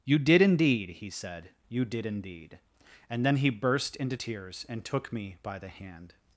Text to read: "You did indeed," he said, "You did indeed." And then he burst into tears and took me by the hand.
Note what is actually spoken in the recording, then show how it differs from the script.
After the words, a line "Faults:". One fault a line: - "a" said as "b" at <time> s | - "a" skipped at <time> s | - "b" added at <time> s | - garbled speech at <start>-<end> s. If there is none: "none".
"You did indeed," he said, "You did indeed." And then he burst into tears and took me by the hand.
Faults:
none